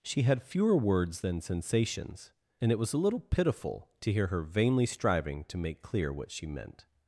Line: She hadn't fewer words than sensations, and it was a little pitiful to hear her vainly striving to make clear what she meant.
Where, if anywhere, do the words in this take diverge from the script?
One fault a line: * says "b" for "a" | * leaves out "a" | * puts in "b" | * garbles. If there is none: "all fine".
* says "had" for "hadn't"